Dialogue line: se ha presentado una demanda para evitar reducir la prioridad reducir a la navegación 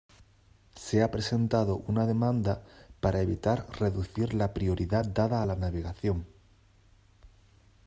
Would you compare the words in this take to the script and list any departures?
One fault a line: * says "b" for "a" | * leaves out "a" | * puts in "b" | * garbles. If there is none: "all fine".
* says "dada" for "reducir"